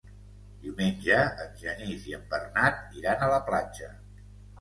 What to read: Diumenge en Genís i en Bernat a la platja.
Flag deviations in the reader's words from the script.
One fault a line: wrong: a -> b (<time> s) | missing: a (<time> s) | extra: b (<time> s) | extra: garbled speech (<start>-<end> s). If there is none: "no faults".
extra: iran (3.0 s)